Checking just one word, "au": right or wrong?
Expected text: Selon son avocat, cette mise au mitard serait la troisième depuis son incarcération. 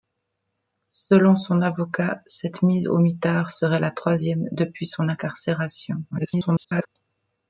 right